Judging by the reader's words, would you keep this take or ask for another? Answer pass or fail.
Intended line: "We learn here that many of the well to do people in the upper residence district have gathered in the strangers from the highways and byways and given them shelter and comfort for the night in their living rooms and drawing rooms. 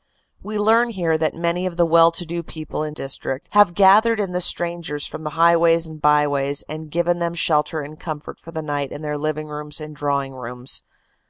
fail